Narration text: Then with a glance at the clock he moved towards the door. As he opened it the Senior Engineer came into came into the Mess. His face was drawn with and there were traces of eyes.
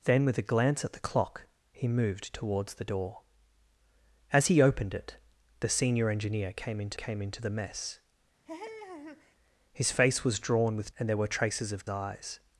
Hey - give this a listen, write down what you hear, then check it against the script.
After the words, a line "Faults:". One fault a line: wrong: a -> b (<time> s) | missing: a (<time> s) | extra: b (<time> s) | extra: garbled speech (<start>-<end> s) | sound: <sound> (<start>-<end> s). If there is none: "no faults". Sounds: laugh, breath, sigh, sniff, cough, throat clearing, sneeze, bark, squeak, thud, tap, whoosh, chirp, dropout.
Then with a glance at the clock he moved towards the door. As he opened it the Senior Engineer came into came into the Mess. His face was drawn with and there were traces of eyes.
Faults:
sound: laugh (8.5-9.4 s)